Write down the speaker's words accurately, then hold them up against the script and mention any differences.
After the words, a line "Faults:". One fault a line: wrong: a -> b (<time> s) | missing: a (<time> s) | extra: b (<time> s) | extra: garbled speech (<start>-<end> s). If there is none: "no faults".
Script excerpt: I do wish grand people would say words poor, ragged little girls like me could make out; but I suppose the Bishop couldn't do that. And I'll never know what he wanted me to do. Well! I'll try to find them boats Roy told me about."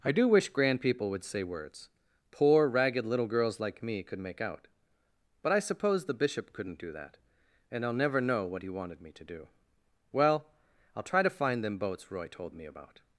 I do wish grand people would say words poor, ragged little girls like me could make out; but I suppose the Bishop couldn't do that. And I'll never know what he wanted me to do. Well! I'll try to find them boats Roy told me about."
Faults:
no faults